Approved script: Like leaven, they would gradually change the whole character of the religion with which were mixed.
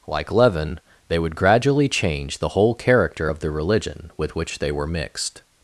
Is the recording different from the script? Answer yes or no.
yes